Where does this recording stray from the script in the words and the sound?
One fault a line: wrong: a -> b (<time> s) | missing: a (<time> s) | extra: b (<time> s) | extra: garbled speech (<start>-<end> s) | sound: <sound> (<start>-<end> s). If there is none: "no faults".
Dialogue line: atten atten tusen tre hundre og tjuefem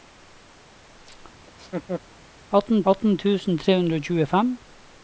sound: laugh (1.5-2.0 s)